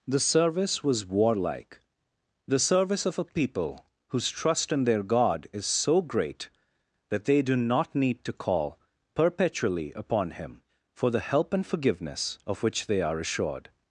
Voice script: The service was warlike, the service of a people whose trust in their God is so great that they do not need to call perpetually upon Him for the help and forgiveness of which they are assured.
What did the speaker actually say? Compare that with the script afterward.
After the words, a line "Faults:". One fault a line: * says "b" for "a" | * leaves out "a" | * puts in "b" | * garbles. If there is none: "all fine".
The service was warlike, the service of a people whose trust in their God is so great that they do not need to call perpetually upon Him for the help and forgiveness of which they are assured.
Faults:
all fine